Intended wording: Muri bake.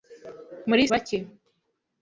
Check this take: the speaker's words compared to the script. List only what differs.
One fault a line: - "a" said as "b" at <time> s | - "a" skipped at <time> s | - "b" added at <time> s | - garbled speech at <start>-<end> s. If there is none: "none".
none